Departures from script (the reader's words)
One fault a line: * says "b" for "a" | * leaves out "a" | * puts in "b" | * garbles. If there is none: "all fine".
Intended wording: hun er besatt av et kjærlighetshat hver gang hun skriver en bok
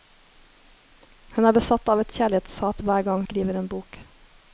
* leaves out "hun"